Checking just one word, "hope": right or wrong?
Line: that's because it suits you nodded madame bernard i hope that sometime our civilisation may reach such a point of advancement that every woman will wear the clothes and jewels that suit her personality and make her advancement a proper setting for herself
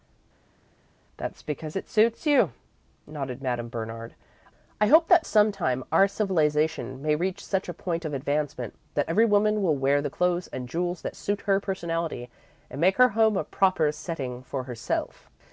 right